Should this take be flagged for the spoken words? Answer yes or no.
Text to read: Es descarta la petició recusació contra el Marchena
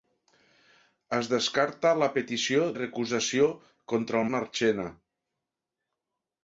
no